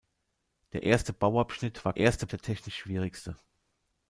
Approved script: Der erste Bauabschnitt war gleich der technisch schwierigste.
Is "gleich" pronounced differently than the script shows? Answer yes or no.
yes